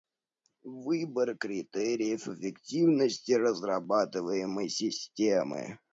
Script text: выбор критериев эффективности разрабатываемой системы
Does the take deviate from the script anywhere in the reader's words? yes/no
no